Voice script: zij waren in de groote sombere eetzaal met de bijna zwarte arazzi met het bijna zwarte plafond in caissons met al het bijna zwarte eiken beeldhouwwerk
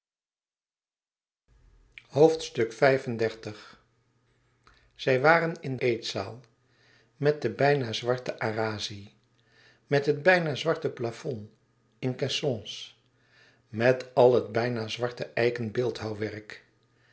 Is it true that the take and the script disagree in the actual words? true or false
true